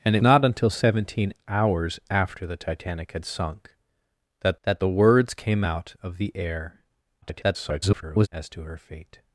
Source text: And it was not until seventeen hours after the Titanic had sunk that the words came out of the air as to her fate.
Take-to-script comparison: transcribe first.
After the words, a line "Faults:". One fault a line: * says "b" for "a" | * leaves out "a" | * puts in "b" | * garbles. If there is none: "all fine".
And it not until seventeen hours after the Titanic had sunk that that the words came out of the air [garbled] as to her fate.
Faults:
* leaves out "was"
* puts in "that"
* garbles